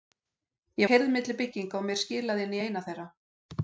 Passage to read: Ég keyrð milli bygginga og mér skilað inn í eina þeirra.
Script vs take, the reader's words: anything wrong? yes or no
no